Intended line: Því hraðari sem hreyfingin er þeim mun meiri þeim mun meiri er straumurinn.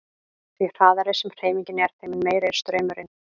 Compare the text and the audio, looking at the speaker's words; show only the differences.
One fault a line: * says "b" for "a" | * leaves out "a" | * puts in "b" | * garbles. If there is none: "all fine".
* leaves out "þeim mun meiri"